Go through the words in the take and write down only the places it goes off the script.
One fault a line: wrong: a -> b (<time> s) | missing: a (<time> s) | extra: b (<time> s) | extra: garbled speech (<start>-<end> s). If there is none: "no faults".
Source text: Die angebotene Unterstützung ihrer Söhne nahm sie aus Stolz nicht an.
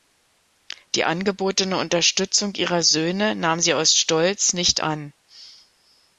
no faults